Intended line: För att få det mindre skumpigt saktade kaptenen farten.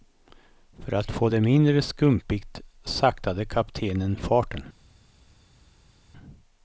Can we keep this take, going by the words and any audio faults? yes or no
yes